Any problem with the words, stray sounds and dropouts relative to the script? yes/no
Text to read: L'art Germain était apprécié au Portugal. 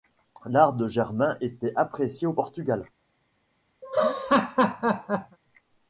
yes